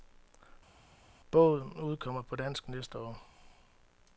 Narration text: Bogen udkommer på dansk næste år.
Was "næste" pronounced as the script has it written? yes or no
yes